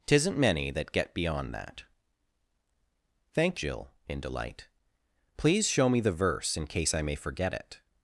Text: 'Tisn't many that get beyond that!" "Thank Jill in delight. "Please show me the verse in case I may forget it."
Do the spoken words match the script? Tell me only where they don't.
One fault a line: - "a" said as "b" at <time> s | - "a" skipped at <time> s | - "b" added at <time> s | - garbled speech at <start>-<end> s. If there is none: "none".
none